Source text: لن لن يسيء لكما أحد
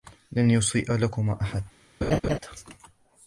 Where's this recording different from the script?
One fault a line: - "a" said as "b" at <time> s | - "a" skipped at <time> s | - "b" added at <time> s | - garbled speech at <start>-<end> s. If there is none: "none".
- "لن" skipped at 0.5 s